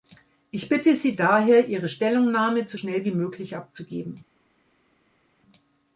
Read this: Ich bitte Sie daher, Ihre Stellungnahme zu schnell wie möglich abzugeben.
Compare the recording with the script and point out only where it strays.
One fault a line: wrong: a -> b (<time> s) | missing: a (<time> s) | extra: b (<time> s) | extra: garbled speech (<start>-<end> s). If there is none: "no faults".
no faults